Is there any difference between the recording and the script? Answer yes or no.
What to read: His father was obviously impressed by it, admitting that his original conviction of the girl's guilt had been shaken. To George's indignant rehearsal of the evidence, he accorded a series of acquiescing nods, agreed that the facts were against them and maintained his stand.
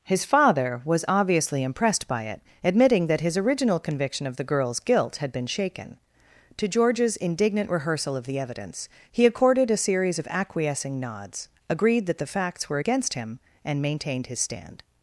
yes